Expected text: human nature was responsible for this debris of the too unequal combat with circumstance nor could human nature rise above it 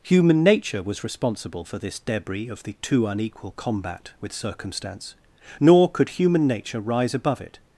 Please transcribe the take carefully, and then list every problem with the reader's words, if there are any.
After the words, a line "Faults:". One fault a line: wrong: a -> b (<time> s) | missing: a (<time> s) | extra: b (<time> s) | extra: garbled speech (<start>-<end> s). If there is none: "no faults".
human nature was responsible for this debris of the too unequal combat with circumstance nor could human nature rise above it
Faults:
no faults